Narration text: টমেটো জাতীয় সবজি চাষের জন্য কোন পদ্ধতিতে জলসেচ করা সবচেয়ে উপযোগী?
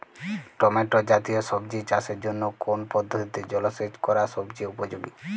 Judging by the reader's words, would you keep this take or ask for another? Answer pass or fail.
pass